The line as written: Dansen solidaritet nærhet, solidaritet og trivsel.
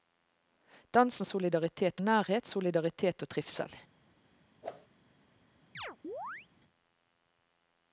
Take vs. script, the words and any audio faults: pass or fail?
fail